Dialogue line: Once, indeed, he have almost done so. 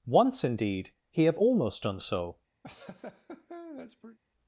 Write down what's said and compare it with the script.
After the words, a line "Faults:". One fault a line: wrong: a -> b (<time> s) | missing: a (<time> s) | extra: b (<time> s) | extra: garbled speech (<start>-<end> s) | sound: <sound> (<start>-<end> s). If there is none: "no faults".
Once, indeed, he have almost done so.
Faults:
sound: laugh (2.6-4.2 s)